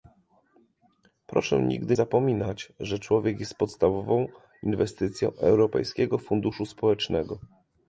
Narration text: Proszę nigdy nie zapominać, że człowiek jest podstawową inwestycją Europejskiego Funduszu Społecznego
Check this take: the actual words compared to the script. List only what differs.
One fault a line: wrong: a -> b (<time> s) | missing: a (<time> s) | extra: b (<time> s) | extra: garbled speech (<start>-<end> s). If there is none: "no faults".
missing: nie (2.0 s)